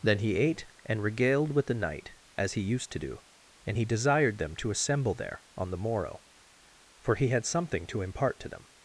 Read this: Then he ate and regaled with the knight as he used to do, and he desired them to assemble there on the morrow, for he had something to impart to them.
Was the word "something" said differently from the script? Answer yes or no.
no